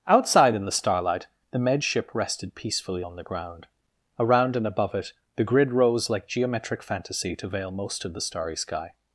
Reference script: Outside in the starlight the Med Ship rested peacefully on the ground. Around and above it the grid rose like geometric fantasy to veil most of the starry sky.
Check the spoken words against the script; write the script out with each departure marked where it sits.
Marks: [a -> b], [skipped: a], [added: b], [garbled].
Outside in the starlight the Med Ship rested peacefully on the ground. Around and above it the grid rose like geometric fantasy to veil most of the starry sky.